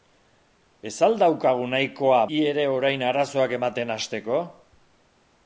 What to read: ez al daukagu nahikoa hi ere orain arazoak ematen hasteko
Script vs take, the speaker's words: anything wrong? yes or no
no